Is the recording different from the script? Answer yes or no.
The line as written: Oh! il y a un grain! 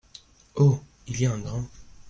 no